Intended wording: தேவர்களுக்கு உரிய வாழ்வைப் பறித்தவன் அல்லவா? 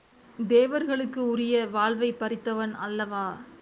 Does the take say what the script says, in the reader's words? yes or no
yes